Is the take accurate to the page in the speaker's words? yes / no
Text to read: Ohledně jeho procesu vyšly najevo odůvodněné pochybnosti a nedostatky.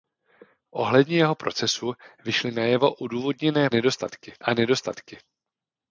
no